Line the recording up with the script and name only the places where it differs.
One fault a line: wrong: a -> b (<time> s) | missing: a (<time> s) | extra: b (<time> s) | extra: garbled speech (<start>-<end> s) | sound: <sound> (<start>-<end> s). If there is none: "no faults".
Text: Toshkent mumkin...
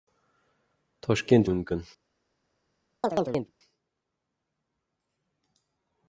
sound: chirp (3.0-3.5 s)